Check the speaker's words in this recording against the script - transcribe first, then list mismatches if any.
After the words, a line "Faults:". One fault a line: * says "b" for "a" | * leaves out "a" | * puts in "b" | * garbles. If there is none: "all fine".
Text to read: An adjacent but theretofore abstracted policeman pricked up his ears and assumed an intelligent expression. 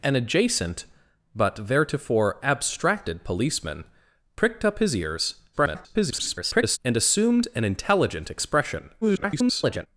An adjacent but theretofore abstracted policeman pricked up his ears [garbled] and assumed an intelligent expression. [garbled]
Faults:
* garbles
* garbles